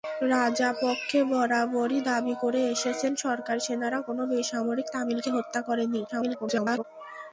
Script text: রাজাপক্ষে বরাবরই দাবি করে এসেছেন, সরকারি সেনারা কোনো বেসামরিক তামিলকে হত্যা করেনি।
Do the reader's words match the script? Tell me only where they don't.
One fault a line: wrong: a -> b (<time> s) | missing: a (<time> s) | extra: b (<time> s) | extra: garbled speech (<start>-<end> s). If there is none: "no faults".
extra: garbled speech (6.1-6.8 s)